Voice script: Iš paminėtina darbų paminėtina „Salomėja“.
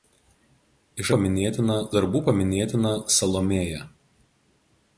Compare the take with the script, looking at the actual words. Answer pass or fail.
pass